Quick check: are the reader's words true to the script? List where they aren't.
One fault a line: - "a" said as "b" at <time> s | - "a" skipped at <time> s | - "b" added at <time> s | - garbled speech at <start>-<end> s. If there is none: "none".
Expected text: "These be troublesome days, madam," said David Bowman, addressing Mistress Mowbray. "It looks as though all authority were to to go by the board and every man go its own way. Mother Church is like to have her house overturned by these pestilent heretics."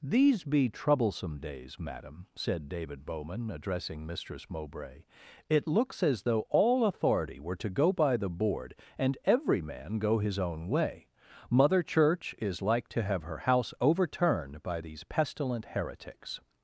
- "to" skipped at 7.7 s
- "its" said as "his" at 10.2 s